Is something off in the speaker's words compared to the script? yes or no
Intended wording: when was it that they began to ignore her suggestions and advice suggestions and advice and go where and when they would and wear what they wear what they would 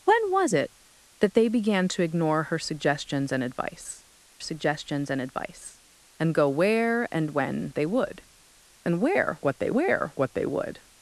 no